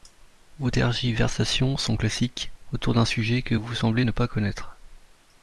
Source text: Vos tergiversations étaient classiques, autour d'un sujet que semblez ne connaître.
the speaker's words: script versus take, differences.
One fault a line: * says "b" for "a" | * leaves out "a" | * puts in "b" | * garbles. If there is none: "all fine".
* says "sont" for "étaient"
* puts in "vous"
* puts in "pas"